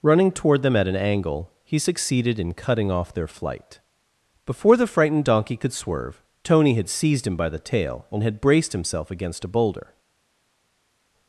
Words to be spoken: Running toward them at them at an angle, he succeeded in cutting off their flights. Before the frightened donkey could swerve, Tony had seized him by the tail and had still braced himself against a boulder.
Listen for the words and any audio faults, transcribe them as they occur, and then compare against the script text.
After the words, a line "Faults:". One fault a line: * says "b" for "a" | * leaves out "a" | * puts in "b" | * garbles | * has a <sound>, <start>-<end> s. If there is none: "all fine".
Running toward them at an angle, he succeeded in cutting off their flight. Before the frightened donkey could swerve, Tony had seized him by the tail and had braced himself against a boulder.
Faults:
* leaves out "them at"
* says "flight" for "flights"
* leaves out "still"